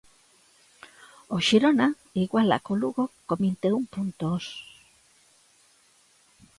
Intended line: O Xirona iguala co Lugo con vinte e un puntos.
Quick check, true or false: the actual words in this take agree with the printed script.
true